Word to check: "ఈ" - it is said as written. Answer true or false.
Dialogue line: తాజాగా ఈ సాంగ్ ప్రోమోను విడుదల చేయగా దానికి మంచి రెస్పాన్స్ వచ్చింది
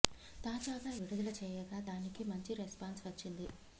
false